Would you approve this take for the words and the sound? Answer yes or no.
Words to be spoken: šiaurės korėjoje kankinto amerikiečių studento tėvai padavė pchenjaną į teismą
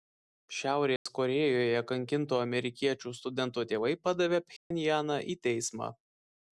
no